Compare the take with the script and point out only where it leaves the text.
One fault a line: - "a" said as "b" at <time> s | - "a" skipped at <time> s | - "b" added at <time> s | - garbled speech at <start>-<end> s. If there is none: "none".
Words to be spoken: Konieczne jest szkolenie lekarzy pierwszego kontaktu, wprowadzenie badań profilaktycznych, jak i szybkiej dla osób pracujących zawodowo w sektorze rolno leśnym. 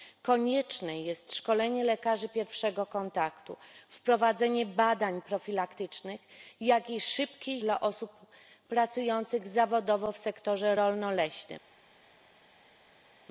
none